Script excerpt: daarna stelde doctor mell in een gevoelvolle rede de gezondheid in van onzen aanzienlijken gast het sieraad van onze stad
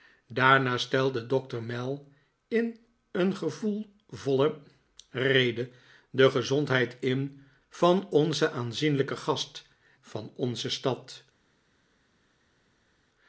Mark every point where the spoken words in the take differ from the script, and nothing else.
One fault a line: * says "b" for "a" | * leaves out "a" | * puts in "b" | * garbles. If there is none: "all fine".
* leaves out "het sieraad"